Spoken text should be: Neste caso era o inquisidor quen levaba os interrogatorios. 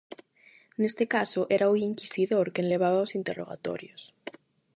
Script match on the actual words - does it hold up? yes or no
yes